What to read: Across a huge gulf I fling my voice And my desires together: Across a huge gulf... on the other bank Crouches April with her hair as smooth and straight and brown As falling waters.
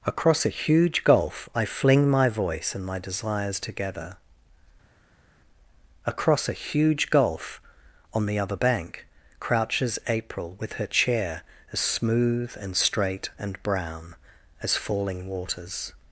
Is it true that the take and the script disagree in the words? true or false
true